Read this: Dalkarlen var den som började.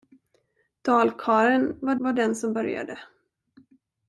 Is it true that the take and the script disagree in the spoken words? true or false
true